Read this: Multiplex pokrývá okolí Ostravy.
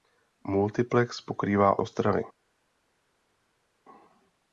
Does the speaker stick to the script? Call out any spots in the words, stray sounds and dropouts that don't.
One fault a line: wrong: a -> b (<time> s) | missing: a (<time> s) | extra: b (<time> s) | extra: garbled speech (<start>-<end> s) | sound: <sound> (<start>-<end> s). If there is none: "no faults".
missing: okolí (1.8 s)